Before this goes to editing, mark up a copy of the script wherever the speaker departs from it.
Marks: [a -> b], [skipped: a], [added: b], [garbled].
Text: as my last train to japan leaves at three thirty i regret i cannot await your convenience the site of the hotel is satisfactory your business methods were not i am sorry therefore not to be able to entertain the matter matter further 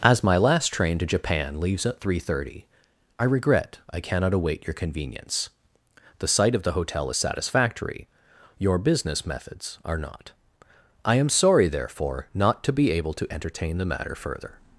as my last train to japan leaves at three thirty i regret i cannot await your convenience the site of the hotel is satisfactory your business methods [were -> are] not i am sorry therefore not to be able to entertain the matter [skipped: matter] further